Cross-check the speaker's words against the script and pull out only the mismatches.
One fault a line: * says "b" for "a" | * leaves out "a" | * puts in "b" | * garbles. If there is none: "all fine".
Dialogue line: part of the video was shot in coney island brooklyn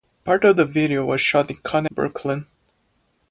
* leaves out "island"